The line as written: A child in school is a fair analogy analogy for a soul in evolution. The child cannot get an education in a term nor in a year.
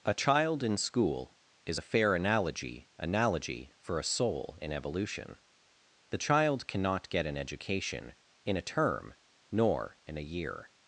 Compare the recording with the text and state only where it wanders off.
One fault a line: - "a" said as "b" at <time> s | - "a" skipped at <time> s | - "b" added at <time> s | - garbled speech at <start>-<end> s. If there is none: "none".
none